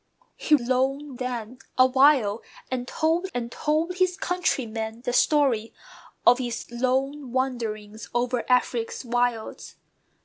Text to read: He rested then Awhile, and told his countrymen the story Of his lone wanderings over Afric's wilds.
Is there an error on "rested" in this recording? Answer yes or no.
yes